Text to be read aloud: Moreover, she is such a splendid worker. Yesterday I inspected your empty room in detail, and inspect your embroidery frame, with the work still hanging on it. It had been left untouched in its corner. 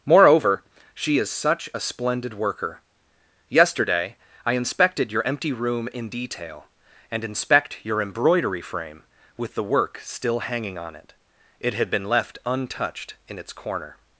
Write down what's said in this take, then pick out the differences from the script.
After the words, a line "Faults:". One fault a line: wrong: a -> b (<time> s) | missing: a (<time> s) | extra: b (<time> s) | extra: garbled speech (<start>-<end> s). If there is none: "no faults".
Moreover, she is such a splendid worker. Yesterday I inspected your empty room in detail, and inspect your embroidery frame, with the work still hanging on it. It had been left untouched in its corner.
Faults:
no faults